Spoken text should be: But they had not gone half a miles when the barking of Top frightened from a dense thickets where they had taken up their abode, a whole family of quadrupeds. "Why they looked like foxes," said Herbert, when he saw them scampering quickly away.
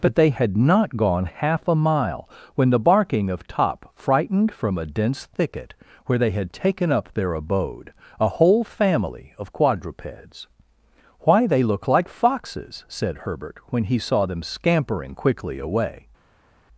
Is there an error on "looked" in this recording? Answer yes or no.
yes